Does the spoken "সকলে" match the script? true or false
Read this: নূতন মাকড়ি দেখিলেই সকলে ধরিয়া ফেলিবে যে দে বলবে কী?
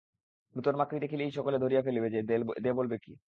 true